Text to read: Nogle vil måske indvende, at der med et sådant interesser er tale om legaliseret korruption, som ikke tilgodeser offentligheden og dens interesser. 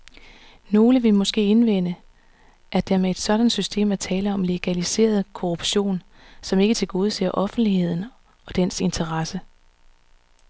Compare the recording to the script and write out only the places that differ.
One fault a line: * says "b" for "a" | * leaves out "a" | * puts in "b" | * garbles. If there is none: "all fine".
* says "system" for "interesser"